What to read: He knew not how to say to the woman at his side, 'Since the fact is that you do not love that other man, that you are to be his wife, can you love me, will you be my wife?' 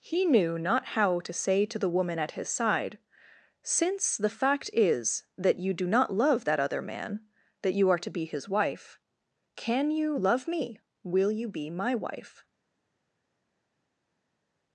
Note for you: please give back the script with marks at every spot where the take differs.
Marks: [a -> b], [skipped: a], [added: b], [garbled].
He knew not how to say to the woman at his side, 'Since the fact is that you do not love that other man, that you are to be his wife, can you love me, will you be my wife?'